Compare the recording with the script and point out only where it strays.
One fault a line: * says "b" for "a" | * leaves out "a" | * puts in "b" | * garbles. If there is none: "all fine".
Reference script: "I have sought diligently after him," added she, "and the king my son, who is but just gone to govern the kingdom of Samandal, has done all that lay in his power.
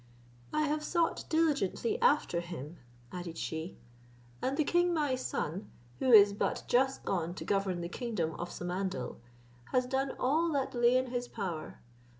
all fine